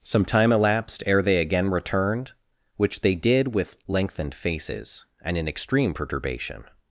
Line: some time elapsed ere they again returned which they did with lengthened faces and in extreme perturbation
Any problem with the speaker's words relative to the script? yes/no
no